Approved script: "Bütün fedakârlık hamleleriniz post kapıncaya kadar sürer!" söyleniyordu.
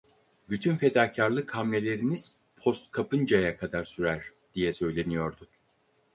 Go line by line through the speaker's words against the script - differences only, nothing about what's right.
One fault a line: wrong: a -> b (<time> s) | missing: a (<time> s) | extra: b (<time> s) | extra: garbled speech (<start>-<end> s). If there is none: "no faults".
extra: diye (4.5 s)